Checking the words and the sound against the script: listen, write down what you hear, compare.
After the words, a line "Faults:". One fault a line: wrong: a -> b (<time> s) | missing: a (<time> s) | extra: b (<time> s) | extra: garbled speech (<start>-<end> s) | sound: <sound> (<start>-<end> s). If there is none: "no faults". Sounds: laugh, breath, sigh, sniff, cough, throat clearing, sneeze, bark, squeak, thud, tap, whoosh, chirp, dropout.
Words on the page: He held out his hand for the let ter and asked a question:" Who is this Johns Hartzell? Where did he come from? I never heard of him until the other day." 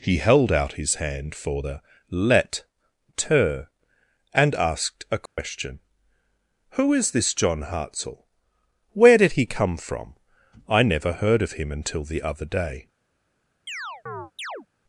He held out his hand for the let ter and asked a question:" Who is this John Hartzell? Where did he come from? I never heard of him until the other day."
Faults:
sound: dropout (5.3-5.4 s)
wrong: Johns -> John (7.3 s)
sound: chirp (13.7-14.7 s)